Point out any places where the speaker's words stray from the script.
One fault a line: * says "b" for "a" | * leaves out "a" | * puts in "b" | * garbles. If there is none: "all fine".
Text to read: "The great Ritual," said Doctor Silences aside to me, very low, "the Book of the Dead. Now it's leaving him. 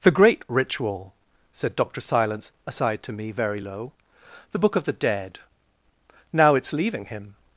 * says "Silence" for "Silences"